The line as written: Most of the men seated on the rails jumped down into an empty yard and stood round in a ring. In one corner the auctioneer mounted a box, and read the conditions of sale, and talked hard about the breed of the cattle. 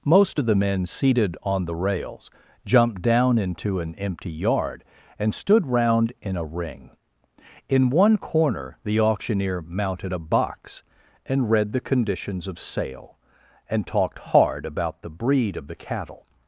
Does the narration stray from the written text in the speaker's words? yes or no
no